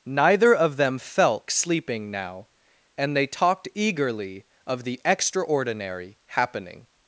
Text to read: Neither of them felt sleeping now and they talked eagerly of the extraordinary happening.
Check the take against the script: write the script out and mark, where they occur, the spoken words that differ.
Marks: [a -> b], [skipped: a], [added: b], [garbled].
Neither of them felt sleeping now and they talked eagerly of the extraordinary happening.